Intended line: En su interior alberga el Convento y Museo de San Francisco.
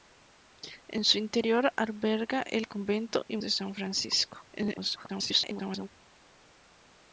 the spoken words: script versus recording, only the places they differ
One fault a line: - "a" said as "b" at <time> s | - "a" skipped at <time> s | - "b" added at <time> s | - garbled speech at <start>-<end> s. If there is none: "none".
- "Museo" skipped at 3.4 s
- garbled speech at 4.5-5.9 s